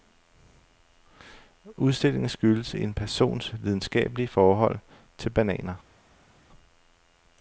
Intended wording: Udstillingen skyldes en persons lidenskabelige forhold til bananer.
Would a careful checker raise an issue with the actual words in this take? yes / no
no